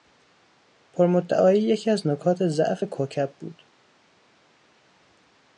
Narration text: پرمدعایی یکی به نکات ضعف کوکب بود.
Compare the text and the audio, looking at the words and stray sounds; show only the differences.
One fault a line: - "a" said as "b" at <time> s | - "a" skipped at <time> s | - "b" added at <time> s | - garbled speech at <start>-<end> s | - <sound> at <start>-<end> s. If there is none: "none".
- "به" said as "از" at 1.9 s